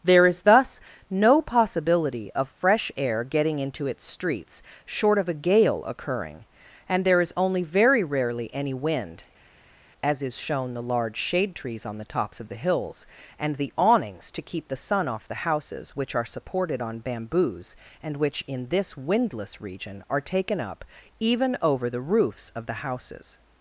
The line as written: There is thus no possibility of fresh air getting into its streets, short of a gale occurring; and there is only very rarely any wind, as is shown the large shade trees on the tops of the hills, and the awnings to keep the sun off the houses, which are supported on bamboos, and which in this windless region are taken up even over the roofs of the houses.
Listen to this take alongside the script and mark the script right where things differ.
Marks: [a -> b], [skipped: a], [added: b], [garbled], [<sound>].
There is thus no possibility of fresh air getting into its streets, short of a gale occurring; and there is only very rarely any wind, as is shown the large shade trees on the tops of the hills, and the awnings to keep the sun off the houses, which are supported on bamboos, and which in this windless region are taken up even over the roofs of the houses.